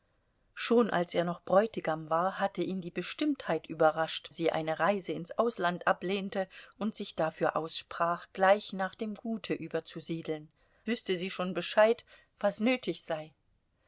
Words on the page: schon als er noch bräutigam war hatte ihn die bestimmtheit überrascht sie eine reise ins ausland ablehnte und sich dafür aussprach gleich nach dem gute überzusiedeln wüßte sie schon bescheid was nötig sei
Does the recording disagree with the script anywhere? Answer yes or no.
no